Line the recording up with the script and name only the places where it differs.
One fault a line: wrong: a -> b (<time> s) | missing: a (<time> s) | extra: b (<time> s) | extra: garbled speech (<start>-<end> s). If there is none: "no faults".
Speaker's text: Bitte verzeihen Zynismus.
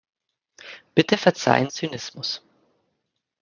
no faults